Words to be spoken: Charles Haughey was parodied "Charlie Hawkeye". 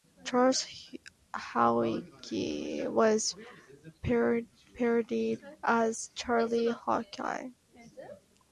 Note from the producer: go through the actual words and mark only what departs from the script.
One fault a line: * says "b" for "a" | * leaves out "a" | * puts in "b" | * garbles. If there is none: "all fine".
* puts in "as"